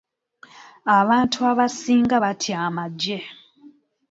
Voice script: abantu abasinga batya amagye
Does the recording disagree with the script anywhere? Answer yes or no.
no